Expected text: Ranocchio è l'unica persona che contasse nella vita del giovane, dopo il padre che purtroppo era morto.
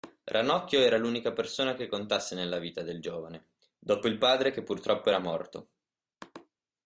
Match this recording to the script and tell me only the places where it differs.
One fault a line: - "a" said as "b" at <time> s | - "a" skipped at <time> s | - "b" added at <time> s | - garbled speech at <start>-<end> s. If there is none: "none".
- "è" said as "era" at 0.8 s